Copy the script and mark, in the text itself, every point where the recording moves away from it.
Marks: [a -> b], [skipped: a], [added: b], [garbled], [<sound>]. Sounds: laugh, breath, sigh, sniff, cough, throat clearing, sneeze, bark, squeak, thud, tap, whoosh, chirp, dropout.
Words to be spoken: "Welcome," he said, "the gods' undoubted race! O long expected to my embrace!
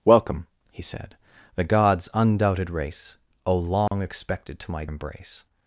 "Welcome," he said, "the gods' undoubted race! O long [dropout] expected to my embrace!